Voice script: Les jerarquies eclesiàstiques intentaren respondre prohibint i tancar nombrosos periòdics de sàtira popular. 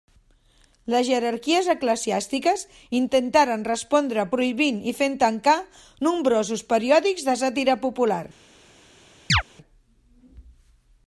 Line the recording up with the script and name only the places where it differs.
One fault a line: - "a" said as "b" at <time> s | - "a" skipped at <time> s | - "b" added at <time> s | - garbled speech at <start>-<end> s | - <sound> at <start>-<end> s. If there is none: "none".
- "fent" added at 5.0 s
- chirp at 9.3-9.4 s